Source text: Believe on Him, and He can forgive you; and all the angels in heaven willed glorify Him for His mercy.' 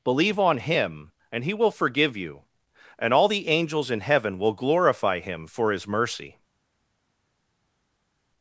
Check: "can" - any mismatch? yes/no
yes